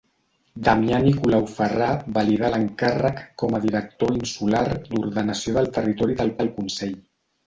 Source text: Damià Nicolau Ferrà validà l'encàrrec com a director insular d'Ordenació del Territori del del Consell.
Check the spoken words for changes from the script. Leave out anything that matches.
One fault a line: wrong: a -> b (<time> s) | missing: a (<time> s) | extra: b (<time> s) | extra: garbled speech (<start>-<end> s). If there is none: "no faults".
no faults